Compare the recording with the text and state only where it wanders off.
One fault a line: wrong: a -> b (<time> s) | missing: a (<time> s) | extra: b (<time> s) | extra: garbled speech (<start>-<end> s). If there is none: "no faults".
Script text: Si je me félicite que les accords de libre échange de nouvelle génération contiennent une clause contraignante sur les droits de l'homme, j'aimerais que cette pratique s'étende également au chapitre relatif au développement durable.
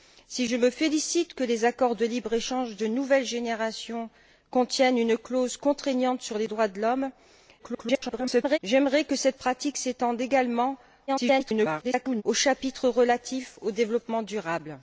extra: garbled speech (7.6-8.6 s)
extra: garbled speech (11.1-12.2 s)